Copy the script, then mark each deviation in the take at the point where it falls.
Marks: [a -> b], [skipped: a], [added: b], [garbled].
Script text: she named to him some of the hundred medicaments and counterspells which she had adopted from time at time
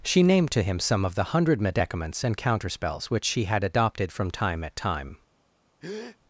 she named to him some of the hundred medicaments and counterspells which she had adopted from time at time